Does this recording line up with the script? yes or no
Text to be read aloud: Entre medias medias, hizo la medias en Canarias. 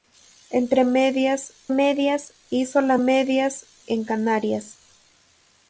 yes